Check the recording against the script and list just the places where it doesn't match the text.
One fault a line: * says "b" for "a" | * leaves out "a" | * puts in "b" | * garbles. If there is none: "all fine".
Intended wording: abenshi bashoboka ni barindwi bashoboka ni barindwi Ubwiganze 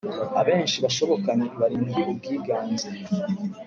* leaves out "bashoboka ni barindwi"